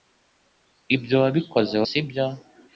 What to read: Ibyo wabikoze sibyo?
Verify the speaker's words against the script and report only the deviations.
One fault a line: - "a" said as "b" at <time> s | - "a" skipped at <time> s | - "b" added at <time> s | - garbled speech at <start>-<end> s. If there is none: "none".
none